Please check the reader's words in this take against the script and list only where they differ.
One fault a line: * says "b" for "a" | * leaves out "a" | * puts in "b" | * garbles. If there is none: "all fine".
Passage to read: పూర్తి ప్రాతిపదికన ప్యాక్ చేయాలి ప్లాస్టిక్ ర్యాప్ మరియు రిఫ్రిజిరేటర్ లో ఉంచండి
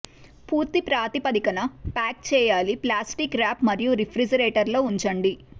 all fine